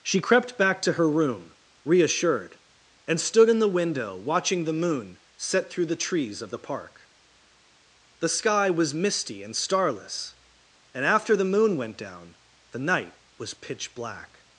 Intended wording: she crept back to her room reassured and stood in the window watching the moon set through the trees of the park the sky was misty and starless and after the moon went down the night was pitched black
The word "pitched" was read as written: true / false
false